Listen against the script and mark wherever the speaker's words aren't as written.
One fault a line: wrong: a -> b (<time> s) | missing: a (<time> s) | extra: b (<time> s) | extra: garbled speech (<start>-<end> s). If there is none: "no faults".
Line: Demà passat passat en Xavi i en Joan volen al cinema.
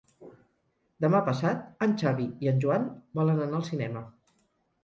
missing: passat (1.9 s)
extra: anar (3.5 s)